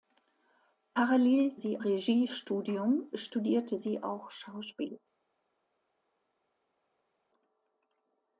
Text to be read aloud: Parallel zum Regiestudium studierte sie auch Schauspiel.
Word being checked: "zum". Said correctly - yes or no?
no